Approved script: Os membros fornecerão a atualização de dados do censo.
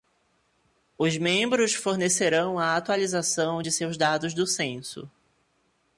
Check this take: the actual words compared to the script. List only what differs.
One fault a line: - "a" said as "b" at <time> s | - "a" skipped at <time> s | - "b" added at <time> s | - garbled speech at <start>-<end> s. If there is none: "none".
- "seus" added at 3.7 s